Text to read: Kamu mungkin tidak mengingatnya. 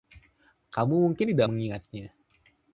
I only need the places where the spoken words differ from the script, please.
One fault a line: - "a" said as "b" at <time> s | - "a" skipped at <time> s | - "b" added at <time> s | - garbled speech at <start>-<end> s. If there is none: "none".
none